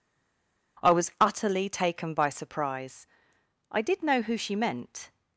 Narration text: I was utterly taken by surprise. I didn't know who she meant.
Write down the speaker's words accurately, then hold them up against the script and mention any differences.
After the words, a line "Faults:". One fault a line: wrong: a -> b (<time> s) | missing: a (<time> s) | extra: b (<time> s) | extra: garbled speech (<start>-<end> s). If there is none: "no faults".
I was utterly taken by surprise. I did know who she meant.
Faults:
wrong: didn't -> did (3.8 s)